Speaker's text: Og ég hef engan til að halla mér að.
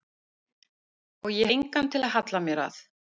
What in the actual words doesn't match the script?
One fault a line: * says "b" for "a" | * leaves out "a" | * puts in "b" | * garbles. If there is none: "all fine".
* leaves out "hef"